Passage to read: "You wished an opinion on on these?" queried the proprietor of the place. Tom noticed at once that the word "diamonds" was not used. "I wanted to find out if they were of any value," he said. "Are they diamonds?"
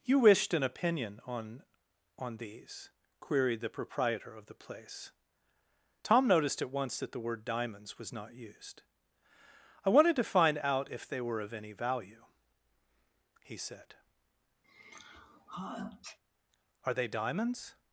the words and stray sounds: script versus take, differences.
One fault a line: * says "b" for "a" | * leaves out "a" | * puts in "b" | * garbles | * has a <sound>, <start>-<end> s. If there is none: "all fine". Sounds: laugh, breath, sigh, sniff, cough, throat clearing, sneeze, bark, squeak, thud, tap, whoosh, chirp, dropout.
* has a sneeze, 14.6-16.2 s